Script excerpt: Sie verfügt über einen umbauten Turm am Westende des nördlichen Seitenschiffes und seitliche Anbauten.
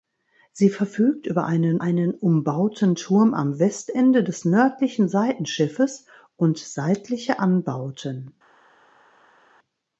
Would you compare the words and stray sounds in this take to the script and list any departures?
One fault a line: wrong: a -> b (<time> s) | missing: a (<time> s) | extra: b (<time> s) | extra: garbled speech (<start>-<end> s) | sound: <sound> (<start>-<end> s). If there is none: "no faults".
extra: einen (1.8 s)